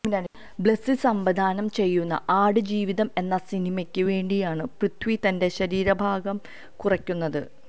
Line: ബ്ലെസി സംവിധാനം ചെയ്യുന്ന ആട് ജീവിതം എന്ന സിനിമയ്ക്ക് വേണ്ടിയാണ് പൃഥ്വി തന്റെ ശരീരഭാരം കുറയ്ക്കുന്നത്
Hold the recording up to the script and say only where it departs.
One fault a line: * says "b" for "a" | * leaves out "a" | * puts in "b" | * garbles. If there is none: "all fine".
all fine